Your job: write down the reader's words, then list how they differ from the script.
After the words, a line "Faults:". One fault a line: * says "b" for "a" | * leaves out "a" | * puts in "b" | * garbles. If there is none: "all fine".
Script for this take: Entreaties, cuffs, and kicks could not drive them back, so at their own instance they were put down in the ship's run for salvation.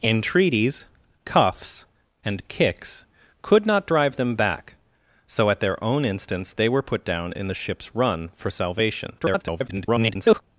Entreaties, cuffs, and kicks could not drive them back, so at their own instance they were put down in the ship's run for salvation. [garbled]
Faults:
* garbles